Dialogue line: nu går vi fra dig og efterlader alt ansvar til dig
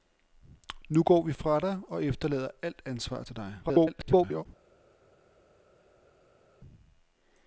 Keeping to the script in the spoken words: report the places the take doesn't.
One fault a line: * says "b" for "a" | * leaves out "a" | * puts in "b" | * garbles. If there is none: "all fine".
* garbles